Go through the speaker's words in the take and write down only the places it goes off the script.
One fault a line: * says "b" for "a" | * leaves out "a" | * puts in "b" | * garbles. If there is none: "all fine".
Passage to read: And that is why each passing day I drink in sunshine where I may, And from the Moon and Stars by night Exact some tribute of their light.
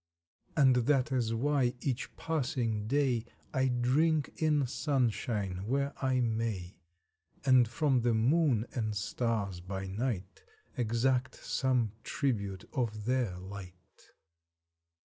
all fine